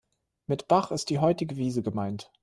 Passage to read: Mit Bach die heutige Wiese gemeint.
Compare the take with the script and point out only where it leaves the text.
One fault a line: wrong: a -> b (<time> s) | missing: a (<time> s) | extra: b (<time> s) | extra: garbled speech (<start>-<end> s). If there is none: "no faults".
extra: ist (0.9 s)